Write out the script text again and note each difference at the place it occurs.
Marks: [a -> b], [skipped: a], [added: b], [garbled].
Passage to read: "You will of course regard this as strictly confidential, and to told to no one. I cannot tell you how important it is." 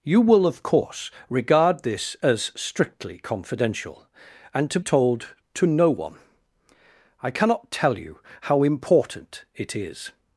"You will of course regard this as strictly confidential, and to told to no one. I cannot tell you how important it is."